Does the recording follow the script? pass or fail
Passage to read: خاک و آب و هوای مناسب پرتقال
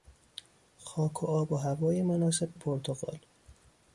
pass